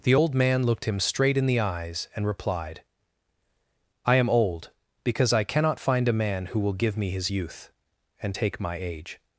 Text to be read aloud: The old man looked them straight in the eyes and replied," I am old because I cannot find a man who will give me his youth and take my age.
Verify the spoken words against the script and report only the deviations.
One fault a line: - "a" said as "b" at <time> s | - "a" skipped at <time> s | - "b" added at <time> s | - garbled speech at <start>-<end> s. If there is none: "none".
- "them" said as "him" at 0.8 s